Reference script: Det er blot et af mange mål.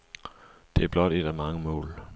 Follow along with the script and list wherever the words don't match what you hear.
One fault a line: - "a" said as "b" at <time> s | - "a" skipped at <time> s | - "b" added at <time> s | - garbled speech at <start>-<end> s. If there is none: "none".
none